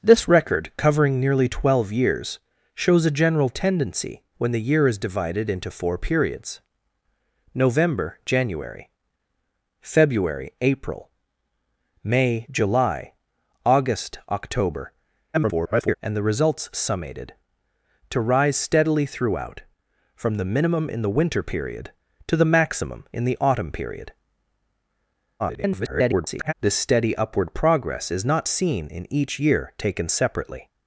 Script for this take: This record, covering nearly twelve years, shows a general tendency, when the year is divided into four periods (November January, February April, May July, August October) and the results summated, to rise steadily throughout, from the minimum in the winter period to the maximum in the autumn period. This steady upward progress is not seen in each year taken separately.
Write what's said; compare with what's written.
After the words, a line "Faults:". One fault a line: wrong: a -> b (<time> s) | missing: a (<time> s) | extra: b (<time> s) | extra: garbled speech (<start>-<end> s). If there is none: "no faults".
This record, covering nearly twelve years, shows a general tendency, when the year is divided into four periods (November January, February April, May July, August October) [garbled] and the results summated, to rise steadily throughout, from the minimum in the winter period to the maximum in the autumn period. [garbled] This steady upward progress is not seen in each year taken separately.
Faults:
extra: garbled speech (15.3-16.0 s)
extra: garbled speech (25.4-26.5 s)